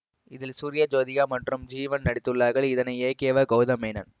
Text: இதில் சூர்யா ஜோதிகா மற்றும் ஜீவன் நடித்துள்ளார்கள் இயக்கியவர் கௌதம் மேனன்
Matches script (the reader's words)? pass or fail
fail